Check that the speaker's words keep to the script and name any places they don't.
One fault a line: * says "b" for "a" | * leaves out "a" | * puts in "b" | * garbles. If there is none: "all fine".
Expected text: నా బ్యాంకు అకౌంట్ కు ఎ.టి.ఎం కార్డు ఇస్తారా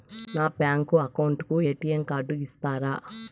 all fine